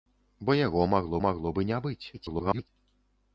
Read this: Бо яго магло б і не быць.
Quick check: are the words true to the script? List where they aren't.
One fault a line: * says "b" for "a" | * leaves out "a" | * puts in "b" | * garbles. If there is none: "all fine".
* puts in "магло"
* garbles